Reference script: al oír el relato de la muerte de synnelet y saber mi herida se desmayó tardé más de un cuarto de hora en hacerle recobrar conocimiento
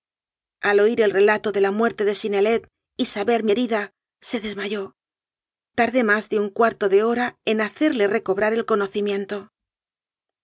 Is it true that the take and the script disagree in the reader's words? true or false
true